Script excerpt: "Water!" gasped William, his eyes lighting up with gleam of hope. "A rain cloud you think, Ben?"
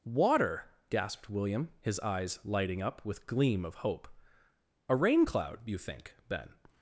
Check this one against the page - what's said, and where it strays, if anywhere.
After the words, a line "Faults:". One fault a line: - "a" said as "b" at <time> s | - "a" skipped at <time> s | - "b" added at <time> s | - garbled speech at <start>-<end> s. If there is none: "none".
"Water!" gasped William, his eyes lighting up with gleam of hope. "A rain cloud you think, Ben?"
Faults:
none